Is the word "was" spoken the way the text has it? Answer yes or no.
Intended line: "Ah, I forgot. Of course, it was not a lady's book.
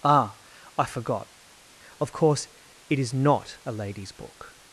no